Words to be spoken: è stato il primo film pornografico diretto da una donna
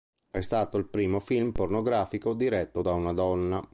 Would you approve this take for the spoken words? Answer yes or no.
yes